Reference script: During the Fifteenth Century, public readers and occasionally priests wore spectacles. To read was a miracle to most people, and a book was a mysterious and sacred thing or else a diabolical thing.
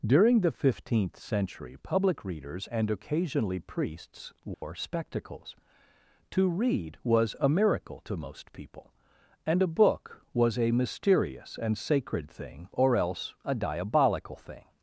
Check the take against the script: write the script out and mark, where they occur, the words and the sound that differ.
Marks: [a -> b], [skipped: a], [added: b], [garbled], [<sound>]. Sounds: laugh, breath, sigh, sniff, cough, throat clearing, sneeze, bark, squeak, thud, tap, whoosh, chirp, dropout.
During the Fifteenth Century, public readers and occasionally priests wore [dropout] spectacles. To read was a miracle to most people, and a book was a mysterious and sacred thing or else a diabolical thing.